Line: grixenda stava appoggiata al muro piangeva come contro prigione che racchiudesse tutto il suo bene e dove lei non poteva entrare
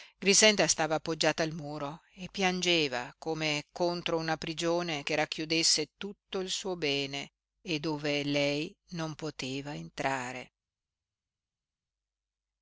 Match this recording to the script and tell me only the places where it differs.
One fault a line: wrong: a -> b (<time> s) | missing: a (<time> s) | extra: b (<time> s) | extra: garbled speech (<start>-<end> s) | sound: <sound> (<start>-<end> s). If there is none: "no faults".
extra: e (2.1 s)
extra: una (4.2 s)